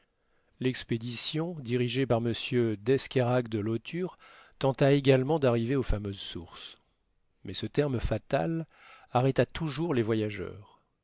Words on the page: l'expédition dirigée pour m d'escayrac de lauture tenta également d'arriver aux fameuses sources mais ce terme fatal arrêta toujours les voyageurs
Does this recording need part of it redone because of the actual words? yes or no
yes